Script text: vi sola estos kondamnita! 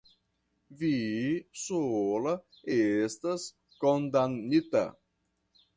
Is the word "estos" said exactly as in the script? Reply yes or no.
no